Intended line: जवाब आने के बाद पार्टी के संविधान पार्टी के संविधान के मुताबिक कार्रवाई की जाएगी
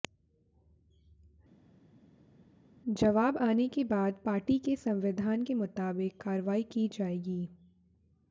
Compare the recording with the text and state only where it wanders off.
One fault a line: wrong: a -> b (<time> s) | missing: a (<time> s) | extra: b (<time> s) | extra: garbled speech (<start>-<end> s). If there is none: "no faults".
missing: पार्टी के संविधान (5.4 s)